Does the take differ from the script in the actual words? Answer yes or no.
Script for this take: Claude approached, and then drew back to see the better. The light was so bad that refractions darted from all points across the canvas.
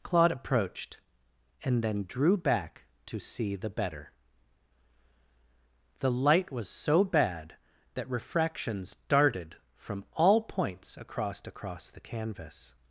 yes